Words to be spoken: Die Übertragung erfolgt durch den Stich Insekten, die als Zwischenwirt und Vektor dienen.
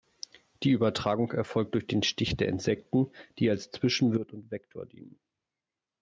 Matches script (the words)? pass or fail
fail